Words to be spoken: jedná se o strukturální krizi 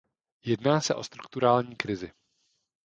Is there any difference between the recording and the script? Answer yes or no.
no